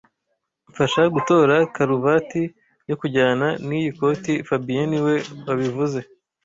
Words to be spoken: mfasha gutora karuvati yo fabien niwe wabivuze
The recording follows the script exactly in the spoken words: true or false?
false